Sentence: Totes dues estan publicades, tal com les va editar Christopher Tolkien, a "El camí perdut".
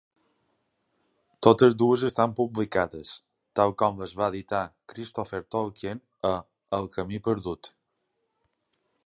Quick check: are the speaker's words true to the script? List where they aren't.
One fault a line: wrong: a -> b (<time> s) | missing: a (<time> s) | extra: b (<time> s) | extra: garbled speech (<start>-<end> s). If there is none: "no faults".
no faults